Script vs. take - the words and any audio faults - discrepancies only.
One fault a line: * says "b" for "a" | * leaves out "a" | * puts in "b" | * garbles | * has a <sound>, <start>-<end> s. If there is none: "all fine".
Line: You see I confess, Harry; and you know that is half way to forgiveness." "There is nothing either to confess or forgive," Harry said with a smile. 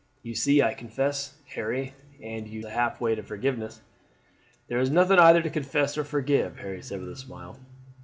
* leaves out "know that is"